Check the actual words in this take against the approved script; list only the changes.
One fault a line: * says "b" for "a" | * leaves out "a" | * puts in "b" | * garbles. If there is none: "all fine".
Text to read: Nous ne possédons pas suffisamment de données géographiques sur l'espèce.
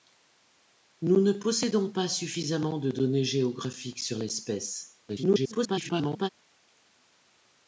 * garbles